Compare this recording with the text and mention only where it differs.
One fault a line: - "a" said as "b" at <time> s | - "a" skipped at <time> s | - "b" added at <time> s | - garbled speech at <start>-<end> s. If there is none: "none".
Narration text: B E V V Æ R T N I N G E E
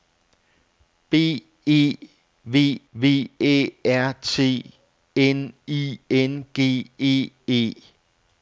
none